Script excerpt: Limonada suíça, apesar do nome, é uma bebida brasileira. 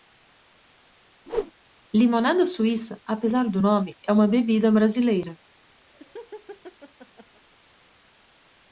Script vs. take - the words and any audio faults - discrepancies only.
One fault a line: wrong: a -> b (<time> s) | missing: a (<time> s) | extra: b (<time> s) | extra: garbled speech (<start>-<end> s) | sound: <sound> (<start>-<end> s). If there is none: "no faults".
sound: whoosh (1.3-1.5 s)
sound: laugh (5.9-7.4 s)